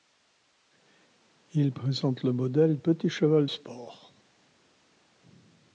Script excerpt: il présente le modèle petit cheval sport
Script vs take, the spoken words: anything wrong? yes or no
no